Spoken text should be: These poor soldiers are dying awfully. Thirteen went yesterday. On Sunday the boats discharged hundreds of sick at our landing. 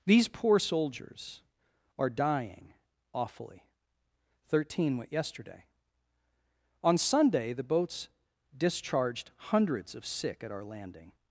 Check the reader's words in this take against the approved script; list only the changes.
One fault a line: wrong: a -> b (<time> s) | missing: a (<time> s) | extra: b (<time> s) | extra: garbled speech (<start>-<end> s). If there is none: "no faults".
no faults